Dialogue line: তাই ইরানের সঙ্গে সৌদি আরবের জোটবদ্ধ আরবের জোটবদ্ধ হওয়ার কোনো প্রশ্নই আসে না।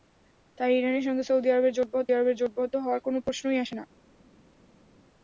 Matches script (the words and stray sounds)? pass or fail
pass